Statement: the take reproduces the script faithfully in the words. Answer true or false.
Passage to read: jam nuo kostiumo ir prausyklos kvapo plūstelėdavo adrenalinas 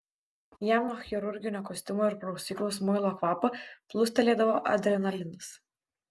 false